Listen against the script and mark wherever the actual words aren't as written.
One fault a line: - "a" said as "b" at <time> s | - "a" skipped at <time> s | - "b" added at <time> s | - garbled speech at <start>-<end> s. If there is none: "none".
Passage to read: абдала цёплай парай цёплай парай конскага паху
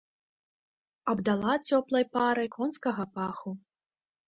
- "цёплай парай" skipped at 2.5 s